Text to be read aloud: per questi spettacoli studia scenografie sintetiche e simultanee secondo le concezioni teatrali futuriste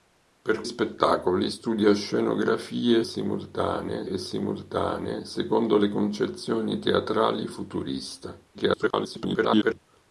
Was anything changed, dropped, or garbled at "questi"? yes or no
yes